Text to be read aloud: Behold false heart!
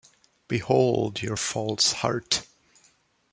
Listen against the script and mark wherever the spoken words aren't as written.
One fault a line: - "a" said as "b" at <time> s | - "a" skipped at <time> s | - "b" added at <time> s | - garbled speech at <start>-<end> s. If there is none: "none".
- "your" added at 1.2 s